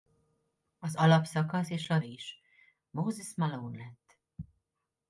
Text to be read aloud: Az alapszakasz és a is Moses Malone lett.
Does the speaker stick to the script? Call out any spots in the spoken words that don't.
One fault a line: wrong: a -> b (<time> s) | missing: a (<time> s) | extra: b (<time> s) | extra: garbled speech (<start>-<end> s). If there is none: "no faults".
no faults